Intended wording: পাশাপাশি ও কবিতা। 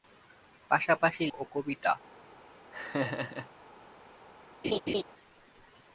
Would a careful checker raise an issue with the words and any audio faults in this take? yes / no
yes